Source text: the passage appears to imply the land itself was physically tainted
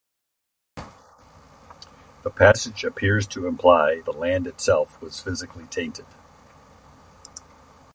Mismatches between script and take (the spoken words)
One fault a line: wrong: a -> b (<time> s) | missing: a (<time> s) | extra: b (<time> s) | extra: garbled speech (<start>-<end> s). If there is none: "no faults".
no faults